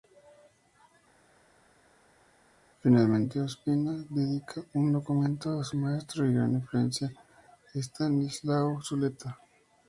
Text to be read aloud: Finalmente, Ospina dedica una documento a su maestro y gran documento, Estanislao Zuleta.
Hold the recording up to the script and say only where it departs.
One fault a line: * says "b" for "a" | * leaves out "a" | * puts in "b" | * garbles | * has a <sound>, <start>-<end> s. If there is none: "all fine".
* says "un" for "una"
* says "influencia" for "documento"